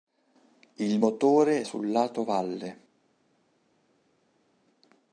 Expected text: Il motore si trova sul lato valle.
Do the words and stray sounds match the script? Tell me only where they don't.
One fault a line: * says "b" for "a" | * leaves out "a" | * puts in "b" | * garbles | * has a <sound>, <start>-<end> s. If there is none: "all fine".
* leaves out "si trova"